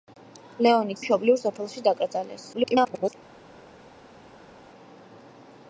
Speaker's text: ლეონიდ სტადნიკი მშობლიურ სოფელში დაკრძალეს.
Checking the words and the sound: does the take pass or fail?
fail